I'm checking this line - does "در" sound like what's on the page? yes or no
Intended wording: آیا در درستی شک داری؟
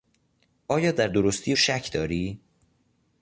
yes